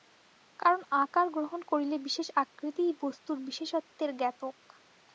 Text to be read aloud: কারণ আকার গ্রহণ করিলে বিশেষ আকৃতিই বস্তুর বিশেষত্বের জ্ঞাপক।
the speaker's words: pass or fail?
pass